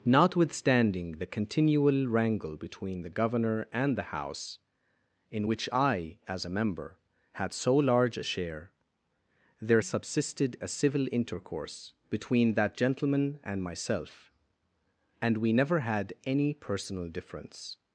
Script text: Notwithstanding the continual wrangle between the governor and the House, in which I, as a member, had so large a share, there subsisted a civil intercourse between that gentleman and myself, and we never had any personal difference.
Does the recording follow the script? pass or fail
pass